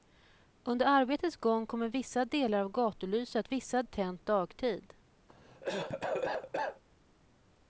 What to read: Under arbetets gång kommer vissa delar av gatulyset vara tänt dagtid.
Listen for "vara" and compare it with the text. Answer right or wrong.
wrong